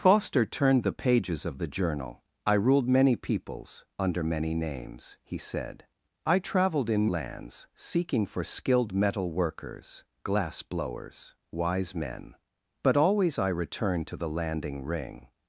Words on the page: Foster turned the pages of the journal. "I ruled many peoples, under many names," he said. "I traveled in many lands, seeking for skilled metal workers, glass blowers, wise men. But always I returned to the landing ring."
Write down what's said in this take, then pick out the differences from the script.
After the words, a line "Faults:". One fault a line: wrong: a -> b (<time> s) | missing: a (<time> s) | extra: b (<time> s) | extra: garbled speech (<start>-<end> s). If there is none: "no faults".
Foster turned the pages of the journal. "I ruled many peoples, under many names," he said. "I traveled in lands, seeking for skilled metal workers, glass blowers, wise men. But always I returned to the landing ring."
Faults:
missing: many (7.1 s)